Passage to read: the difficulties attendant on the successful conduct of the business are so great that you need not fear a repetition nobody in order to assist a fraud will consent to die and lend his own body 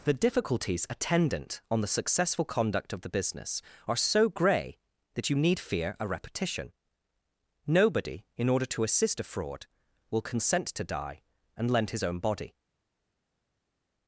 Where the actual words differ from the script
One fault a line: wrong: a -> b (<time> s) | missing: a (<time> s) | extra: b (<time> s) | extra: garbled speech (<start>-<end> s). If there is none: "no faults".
wrong: great -> grey (4.3 s)
missing: not (5.6 s)